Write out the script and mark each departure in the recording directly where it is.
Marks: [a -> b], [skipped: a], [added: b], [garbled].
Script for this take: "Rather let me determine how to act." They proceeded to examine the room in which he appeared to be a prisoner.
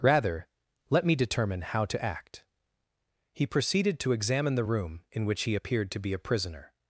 "Rather let me determine how to act." [They -> He] proceeded to examine the room in which he appeared to be a prisoner.